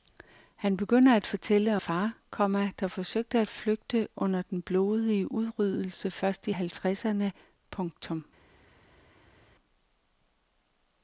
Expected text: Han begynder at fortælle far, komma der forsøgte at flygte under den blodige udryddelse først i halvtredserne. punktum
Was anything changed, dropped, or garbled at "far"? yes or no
no